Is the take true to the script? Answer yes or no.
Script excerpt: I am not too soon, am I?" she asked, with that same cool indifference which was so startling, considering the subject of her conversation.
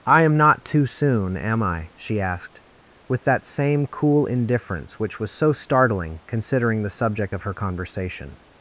yes